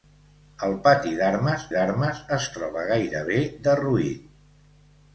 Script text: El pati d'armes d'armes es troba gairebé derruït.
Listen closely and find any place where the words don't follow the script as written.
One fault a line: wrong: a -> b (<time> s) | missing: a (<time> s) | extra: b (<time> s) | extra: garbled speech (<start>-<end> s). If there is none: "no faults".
no faults